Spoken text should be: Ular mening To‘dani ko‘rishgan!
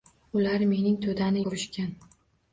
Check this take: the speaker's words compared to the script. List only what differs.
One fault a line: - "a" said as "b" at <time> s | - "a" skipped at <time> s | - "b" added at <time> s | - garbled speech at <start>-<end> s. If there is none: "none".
none